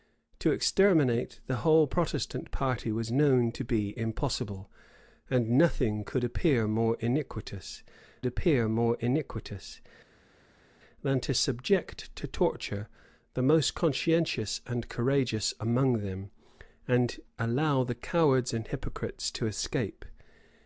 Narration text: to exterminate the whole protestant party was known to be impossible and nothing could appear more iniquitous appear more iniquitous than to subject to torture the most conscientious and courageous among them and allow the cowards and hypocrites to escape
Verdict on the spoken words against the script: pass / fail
pass